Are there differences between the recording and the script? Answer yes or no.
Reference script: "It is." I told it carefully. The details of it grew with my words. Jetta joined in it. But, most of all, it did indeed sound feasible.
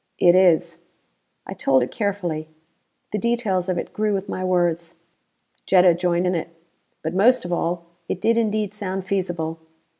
no